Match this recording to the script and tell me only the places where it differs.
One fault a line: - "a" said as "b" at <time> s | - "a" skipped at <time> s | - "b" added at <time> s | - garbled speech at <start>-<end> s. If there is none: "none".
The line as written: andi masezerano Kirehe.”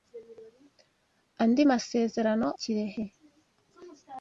none